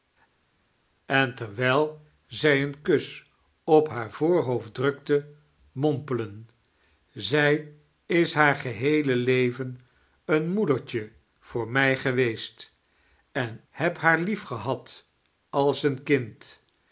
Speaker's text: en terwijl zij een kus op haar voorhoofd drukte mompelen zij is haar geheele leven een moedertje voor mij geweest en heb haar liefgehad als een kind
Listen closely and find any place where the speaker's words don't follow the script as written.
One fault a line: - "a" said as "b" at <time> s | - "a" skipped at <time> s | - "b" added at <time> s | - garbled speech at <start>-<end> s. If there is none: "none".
none